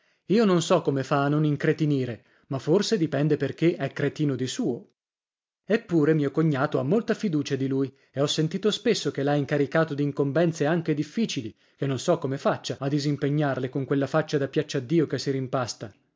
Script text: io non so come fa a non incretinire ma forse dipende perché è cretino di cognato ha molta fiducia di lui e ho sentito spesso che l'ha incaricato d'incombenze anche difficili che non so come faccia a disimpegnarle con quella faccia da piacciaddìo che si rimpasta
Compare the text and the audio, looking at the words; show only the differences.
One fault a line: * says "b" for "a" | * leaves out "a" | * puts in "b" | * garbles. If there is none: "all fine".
* puts in "suo eppure mio"